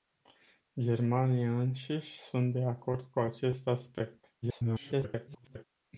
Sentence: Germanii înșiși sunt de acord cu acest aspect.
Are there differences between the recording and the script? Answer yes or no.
yes